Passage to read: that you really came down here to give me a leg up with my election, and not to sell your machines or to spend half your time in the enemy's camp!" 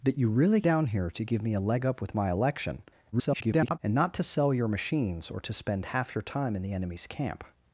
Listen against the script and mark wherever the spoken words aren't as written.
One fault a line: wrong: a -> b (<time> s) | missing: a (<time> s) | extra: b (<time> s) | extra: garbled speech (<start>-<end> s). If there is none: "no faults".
missing: came (0.6 s)
extra: garbled speech (3.1-3.8 s)